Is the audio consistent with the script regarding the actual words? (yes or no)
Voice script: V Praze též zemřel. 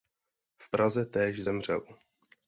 yes